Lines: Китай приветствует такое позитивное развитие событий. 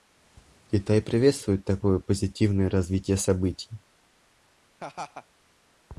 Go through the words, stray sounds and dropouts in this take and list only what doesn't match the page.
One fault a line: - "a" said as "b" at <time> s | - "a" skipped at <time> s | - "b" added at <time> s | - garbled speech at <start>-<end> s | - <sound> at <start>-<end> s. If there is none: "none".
- laugh at 4.8-5.3 s